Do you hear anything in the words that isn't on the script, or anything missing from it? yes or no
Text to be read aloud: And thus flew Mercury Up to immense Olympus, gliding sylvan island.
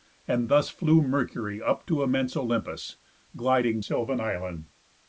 no